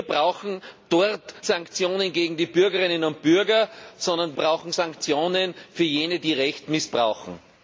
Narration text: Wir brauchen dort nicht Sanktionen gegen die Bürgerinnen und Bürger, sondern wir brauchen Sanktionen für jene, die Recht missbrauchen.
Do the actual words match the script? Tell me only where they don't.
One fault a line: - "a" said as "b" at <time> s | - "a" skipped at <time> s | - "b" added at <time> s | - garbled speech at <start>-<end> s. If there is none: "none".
- "nicht" skipped at 1.4 s
- "wir" skipped at 4.4 s